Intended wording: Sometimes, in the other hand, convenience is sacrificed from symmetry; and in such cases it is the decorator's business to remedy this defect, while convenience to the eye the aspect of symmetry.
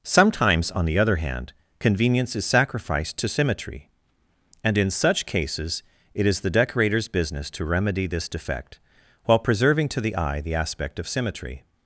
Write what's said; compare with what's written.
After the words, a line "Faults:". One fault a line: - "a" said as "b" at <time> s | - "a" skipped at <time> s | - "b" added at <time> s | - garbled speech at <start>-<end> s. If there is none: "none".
Sometimes, on the other hand, convenience is sacrificed to symmetry; and in such cases it is the decorator's business to remedy this defect, while preserving to the eye the aspect of symmetry.
Faults:
- "in" said as "on" at 0.7 s
- "from" said as "to" at 3.2 s
- "convenience" said as "preserving" at 9.4 s